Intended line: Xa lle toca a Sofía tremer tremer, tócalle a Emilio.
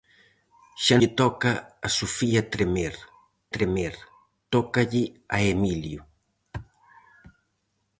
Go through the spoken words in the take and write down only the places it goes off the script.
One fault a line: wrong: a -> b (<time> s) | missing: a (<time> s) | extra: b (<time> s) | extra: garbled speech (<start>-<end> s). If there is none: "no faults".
no faults